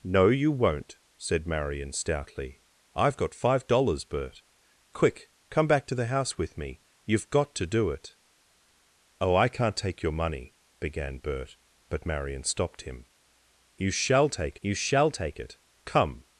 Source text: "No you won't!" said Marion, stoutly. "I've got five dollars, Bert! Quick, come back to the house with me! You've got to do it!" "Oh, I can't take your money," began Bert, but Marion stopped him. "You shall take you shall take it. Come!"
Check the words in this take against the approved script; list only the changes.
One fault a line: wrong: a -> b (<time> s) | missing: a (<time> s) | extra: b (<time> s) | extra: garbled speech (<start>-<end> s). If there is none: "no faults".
no faults